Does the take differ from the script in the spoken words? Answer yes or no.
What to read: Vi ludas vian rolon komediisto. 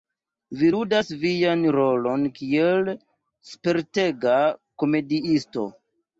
yes